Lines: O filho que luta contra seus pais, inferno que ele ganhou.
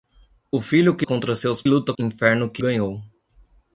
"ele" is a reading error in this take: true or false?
true